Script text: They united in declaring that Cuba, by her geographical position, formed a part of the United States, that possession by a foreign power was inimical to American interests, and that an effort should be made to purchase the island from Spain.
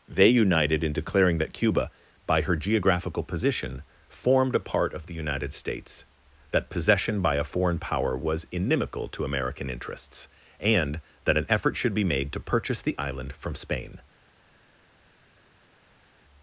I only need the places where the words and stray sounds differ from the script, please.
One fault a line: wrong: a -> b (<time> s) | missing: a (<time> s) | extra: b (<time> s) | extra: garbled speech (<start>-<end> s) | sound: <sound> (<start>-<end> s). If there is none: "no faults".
no faults